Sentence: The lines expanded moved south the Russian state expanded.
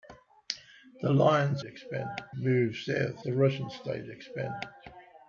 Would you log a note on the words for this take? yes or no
no